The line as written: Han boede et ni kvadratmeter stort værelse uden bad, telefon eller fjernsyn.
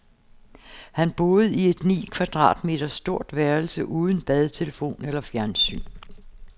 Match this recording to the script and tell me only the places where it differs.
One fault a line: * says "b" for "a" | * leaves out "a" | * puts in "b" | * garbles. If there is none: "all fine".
* puts in "i"